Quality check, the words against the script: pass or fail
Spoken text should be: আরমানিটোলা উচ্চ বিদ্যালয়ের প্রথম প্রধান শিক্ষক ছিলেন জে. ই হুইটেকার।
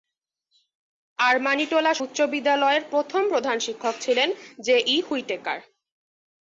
pass